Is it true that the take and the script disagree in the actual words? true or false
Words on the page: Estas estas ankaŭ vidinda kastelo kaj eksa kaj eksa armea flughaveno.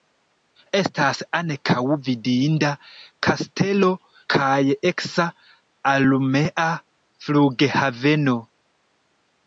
true